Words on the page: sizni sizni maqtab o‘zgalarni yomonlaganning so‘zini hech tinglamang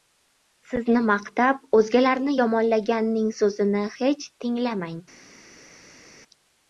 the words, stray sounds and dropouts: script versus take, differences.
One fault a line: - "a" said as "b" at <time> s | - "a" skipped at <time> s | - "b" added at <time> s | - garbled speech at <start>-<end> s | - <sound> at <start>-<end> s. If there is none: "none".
- "sizni" skipped at 1.0 s